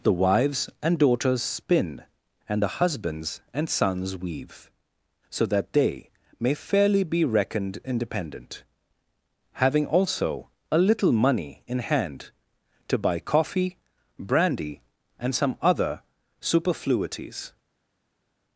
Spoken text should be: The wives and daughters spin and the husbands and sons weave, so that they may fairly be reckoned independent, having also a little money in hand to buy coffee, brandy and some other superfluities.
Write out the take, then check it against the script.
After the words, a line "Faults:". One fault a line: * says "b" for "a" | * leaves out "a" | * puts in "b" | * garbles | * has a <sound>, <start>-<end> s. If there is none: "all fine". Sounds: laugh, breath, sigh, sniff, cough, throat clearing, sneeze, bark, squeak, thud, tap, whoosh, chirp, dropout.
The wives and daughters spin and the husbands and sons weave, so that they may fairly be reckoned independent, having also a little money in hand to buy coffee, brandy and some other superfluities.
Faults:
all fine